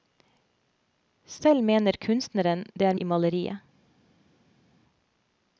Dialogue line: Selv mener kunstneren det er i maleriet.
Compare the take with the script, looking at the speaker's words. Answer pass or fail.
pass